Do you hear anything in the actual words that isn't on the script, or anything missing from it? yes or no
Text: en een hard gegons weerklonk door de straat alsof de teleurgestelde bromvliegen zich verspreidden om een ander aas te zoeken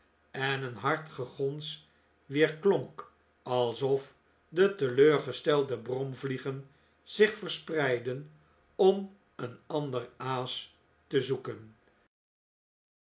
yes